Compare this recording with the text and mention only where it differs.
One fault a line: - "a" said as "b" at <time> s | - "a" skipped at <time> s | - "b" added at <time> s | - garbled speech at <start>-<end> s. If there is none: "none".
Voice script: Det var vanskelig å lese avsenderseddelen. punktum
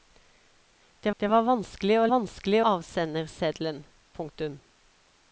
- "det" added at 1.2 s
- "lese" said as "vanskelig" at 2.1 s